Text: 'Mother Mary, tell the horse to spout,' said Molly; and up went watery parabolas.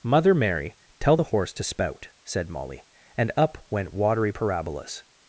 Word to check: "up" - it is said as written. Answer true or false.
true